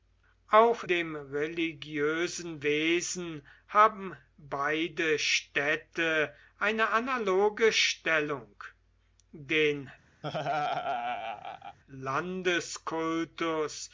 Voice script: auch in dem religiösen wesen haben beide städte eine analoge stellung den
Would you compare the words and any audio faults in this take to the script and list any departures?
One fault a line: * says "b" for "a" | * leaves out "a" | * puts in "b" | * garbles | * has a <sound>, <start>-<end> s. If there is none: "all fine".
* leaves out "in"
* has a laugh, 10.2-11.8 s